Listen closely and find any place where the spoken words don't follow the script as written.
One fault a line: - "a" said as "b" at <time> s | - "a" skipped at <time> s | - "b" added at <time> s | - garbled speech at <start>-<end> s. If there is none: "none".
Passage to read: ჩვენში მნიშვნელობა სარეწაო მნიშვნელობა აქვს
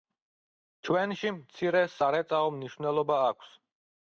- "მნიშვნელობა" said as "მცირე" at 1.4 s